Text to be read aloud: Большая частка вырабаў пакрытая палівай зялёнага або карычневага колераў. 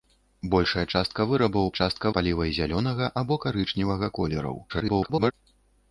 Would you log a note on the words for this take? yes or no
yes